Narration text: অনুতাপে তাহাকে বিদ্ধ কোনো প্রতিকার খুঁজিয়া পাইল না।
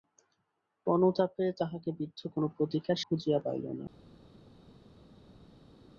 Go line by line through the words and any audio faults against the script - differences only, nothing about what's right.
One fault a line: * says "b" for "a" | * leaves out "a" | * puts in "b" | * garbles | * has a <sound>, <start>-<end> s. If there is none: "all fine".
all fine